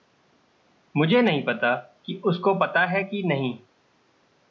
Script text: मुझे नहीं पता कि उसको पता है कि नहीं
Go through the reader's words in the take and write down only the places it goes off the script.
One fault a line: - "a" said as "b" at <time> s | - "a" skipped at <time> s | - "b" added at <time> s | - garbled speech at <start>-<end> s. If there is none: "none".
none